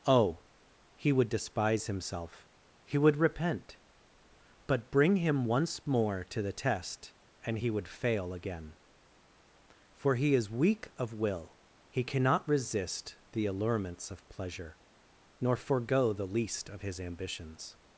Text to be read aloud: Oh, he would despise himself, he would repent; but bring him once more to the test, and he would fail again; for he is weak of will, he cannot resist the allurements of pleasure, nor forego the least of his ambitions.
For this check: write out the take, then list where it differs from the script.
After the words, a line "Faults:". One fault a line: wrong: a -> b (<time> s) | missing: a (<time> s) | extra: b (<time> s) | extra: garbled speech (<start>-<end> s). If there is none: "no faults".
Oh, he would despise himself, he would repent; but bring him once more to the test, and he would fail again; for he is weak of will, he cannot resist the allurements of pleasure, nor forego the least of his ambitions.
Faults:
no faults